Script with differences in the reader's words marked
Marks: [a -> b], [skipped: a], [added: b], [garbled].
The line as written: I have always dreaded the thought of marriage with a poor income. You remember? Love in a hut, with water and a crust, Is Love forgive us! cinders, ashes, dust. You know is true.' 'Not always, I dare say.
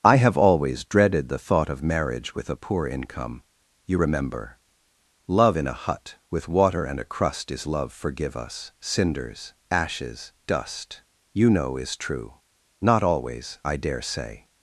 I have always dreaded the thought of marriage with a poor income. You remember? Love in a hut, with water and a crust, Is Love forgive us! cinders, ashes, dust. You know is true.' 'Not always, I dare say.